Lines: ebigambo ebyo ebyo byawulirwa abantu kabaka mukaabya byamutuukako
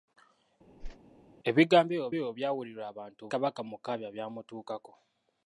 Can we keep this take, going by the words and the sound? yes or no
no